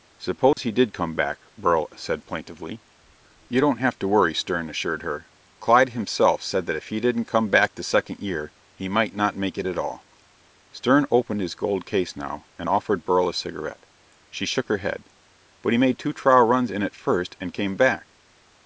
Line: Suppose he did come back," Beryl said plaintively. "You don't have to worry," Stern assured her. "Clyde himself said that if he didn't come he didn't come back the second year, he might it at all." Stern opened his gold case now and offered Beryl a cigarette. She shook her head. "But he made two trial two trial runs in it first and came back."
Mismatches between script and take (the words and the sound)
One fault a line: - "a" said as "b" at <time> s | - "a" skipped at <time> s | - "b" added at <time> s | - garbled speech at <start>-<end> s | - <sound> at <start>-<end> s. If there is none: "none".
- dropout at 0.5-0.6 s
- "he didn't come" skipped at 7.5 s
- "not make" added at 9.1 s
- "two trial" skipped at 16.4 s